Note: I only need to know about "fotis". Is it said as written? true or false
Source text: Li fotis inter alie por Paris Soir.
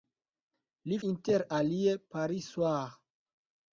false